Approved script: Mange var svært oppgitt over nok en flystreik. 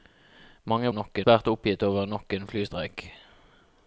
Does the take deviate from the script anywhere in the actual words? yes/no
yes